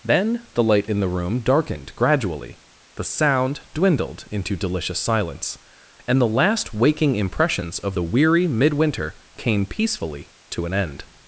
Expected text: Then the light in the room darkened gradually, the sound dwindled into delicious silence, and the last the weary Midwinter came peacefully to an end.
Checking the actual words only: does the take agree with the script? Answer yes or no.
no